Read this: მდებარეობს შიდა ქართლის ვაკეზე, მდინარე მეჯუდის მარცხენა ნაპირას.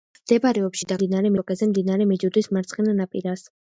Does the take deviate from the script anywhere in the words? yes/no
yes